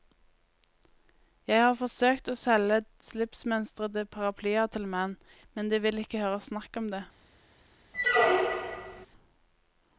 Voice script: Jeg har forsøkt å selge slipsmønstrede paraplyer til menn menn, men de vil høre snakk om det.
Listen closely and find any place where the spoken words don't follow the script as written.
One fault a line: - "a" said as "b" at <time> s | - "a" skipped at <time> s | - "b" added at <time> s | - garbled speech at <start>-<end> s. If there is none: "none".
- "menn" skipped at 5.2 s
- "ikke" added at 6.0 s